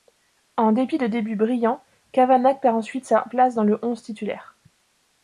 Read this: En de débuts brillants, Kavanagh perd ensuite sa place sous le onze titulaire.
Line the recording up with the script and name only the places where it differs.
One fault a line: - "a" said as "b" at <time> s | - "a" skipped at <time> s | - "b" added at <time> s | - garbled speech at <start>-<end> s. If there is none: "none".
- "dépit" added at 0.7 s
- "sous" said as "dans" at 3.5 s